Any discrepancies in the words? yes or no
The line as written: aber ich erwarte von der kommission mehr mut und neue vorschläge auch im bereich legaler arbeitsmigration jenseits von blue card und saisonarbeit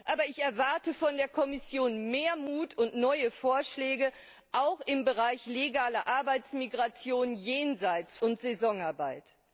yes